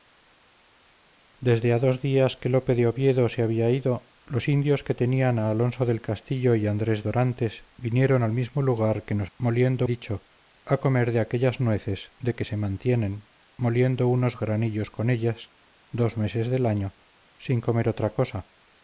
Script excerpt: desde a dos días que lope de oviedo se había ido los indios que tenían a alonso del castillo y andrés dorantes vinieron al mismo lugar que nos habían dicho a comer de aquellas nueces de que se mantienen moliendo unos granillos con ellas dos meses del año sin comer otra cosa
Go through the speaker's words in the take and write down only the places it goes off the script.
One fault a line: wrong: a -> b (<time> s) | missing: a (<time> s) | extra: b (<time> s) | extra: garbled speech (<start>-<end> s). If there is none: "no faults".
wrong: habían -> moliendo (9.4 s)